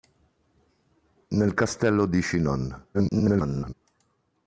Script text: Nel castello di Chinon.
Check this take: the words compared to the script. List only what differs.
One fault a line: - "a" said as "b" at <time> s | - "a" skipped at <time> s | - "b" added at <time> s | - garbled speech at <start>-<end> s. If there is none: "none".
- garbled speech at 2.9-3.7 s